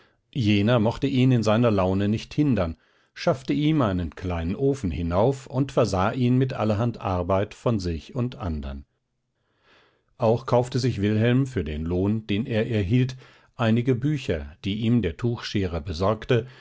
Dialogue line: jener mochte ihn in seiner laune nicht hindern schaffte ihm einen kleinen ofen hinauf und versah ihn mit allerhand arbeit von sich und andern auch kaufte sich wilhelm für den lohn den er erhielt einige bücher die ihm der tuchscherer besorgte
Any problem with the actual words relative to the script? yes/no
no